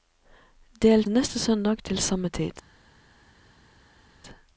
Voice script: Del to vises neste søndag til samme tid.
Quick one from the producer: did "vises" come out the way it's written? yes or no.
no